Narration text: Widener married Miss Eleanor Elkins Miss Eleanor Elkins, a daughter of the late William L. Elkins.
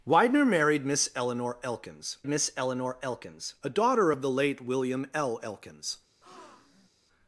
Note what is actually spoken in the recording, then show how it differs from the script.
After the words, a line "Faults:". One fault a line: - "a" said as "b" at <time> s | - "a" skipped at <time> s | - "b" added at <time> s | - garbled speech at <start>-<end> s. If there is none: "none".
Widener married Miss Eleanor Elkins Miss Eleanor Elkins, a daughter of the late William L. Elkins.
Faults:
none